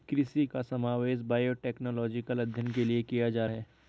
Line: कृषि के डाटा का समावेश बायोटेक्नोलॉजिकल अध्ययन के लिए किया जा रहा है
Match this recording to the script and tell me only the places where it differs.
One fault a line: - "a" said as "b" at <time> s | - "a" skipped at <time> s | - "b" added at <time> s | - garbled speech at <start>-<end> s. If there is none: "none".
- "के डाटा" skipped at 0.4 s
- "रहा" skipped at 3.5 s